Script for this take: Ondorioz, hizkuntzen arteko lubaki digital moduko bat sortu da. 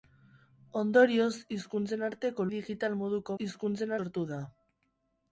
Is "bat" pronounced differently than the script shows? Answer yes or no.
yes